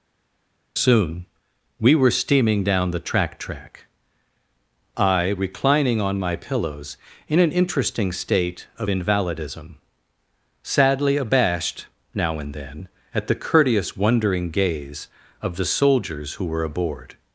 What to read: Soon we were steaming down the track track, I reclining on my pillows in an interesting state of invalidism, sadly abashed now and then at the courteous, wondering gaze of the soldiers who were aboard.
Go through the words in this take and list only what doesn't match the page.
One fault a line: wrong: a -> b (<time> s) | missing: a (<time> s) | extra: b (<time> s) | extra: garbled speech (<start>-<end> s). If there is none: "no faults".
no faults